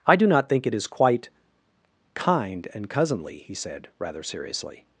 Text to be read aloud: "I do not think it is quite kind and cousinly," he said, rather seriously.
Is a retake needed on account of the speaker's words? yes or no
no